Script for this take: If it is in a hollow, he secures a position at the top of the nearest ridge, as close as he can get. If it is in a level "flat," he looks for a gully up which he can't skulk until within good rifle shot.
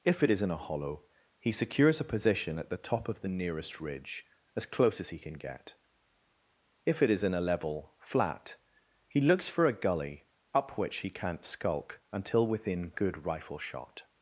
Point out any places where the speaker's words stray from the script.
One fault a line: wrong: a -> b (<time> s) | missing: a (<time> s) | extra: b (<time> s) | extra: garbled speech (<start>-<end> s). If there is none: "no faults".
no faults